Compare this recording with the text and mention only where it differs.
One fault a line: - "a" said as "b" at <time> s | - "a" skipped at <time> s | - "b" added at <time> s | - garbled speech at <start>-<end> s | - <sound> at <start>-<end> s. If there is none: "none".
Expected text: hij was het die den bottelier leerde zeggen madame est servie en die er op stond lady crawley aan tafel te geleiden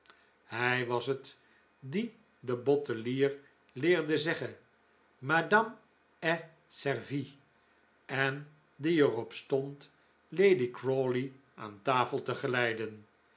none